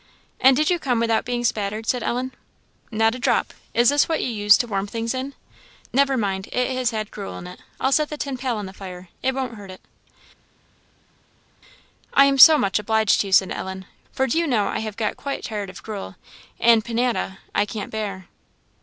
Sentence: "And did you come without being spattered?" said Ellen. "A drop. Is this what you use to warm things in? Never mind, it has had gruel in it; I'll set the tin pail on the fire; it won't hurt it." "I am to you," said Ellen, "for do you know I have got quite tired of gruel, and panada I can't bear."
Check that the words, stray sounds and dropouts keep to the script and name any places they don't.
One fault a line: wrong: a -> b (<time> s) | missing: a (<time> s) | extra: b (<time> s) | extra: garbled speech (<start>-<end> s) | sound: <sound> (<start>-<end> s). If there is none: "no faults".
extra: Not (2.9 s)
extra: so much obliged (12.4 s)